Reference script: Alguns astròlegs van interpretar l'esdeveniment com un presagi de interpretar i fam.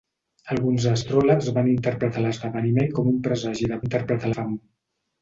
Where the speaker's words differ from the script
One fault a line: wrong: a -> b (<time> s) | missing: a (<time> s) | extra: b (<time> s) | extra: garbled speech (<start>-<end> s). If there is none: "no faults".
no faults